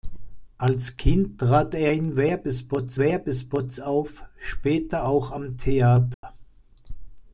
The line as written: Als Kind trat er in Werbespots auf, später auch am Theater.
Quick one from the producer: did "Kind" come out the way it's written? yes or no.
yes